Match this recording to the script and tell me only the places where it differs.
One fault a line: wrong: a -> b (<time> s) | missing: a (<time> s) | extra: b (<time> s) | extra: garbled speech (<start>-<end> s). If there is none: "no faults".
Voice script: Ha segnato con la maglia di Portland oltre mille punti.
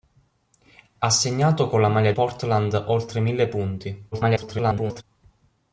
missing: di (2.1 s)
extra: garbled speech (4.1-5.0 s)